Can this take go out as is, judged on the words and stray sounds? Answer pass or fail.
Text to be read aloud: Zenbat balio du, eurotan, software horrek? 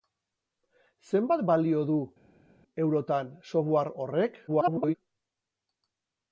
fail